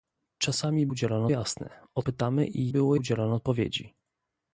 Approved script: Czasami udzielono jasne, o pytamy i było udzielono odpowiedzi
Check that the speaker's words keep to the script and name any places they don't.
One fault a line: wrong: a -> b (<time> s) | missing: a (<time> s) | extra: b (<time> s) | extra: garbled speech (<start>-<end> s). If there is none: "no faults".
no faults